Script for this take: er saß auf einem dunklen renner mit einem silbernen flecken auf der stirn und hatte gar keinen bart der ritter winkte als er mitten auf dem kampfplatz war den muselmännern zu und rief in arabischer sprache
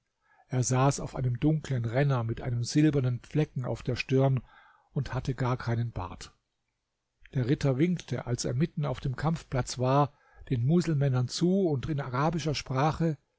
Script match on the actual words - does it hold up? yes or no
no